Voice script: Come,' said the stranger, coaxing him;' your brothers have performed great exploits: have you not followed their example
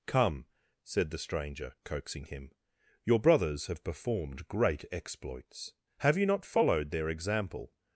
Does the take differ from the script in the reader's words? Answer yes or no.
no